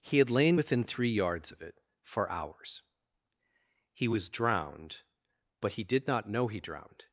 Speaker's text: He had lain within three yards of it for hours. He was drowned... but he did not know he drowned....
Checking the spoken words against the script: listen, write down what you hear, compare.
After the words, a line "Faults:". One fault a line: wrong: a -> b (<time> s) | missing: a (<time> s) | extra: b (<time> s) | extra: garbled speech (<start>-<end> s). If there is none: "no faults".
He had lain within three yards of it for hours. He was drowned... but he did not know he drowned....
Faults:
no faults